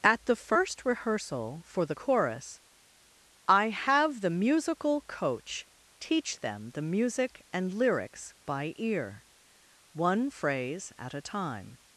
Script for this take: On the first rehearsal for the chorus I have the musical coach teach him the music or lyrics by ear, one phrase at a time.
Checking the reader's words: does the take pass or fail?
fail